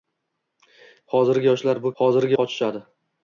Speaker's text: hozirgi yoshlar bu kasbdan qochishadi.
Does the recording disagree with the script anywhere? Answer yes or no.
yes